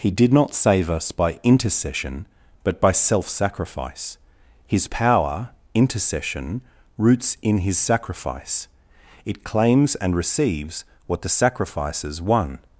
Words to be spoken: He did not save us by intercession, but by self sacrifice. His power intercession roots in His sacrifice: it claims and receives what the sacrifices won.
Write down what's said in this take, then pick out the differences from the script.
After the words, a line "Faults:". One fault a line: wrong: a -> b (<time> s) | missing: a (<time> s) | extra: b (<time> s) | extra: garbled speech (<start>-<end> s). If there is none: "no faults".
He did not save us by intercession, but by self sacrifice. His power intercession roots in His sacrifice: it claims and receives what the sacrifices won.
Faults:
no faults